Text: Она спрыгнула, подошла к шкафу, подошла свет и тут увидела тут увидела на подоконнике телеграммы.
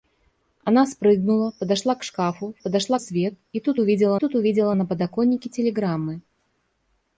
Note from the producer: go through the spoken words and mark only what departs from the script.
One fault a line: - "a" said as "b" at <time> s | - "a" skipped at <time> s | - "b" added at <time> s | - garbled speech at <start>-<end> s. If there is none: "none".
none